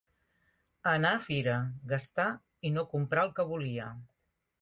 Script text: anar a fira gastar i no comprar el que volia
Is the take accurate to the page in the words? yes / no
yes